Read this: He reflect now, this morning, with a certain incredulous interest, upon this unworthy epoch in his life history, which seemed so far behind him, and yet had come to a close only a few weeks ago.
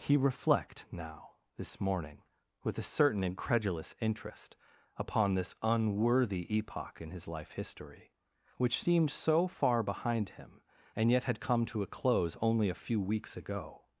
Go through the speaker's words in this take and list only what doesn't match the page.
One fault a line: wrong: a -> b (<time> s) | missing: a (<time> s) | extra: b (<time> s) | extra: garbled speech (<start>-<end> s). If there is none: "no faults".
no faults